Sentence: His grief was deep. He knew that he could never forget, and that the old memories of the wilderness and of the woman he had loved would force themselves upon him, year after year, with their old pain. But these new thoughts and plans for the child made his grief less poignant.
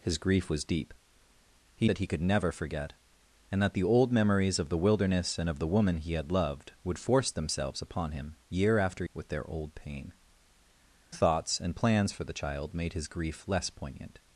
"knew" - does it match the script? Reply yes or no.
no